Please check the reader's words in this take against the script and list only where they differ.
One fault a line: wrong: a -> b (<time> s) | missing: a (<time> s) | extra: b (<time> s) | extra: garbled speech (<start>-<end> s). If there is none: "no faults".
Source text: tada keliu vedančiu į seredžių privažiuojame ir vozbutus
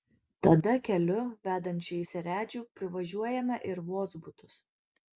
no faults